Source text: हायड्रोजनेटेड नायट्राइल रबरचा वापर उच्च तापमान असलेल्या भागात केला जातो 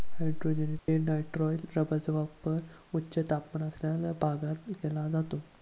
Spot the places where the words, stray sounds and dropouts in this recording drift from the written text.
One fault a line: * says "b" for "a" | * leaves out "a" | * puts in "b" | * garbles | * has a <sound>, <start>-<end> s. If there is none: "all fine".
* has a dropout, 0.8-0.9 s